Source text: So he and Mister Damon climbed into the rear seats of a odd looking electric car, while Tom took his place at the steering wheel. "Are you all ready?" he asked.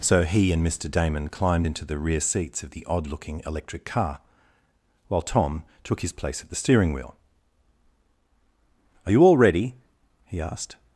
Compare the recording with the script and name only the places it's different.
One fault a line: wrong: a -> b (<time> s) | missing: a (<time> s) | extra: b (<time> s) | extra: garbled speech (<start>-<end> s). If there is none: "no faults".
wrong: a -> the (2.7 s)